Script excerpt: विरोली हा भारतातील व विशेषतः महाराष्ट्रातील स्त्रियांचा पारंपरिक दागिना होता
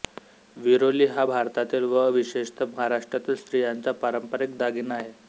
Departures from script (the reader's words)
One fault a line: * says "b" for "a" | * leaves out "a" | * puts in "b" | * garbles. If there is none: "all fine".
* says "आहे" for "होता"